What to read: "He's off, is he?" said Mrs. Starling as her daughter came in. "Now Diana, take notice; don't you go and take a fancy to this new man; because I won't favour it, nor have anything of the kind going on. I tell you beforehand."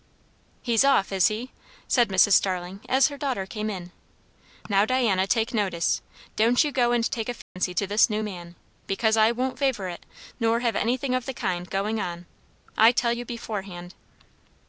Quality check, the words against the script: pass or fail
pass